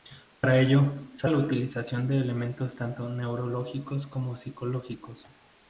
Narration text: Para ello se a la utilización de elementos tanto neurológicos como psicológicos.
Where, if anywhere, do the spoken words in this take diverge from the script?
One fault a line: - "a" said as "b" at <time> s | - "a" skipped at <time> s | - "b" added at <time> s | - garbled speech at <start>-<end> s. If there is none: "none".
none